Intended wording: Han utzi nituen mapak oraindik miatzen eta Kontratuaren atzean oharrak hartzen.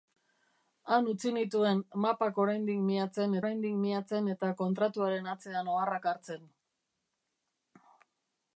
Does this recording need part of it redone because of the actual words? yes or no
yes